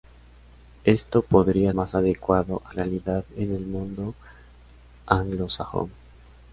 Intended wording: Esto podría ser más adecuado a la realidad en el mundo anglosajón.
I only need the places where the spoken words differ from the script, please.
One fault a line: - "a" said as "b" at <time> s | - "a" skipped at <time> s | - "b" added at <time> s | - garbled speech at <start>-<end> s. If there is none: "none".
- "ser" skipped at 1.8 s
- "la" skipped at 2.7 s